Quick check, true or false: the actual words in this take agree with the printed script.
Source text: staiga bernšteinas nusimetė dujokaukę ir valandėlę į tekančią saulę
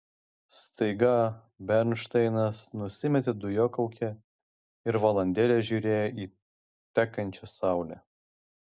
false